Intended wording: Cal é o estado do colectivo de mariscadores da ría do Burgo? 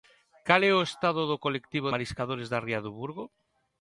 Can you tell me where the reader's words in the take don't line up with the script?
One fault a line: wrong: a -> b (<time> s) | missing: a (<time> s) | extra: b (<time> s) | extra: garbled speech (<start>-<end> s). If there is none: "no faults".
missing: de (1.9 s)